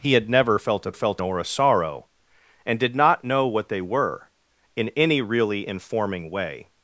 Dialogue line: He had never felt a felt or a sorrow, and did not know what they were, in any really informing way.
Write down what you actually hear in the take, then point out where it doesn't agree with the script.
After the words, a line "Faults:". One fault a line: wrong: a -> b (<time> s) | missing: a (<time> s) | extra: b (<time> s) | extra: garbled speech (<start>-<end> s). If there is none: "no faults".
He had never felt a felt or a sorrow, and did not know what they were, in any really informing way.
Faults:
no faults